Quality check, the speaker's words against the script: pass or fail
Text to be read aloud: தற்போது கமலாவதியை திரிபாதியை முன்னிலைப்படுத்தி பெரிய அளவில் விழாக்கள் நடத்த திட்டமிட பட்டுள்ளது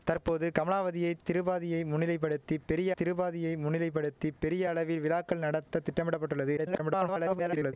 fail